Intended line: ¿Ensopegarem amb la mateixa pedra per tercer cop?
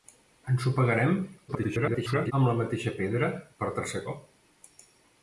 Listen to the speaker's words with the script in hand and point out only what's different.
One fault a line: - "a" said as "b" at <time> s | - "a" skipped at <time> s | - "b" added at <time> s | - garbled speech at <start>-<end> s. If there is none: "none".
- garbled speech at 1.5-2.3 s